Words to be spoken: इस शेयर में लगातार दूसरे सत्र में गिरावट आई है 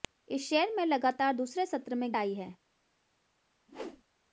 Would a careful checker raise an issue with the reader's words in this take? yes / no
yes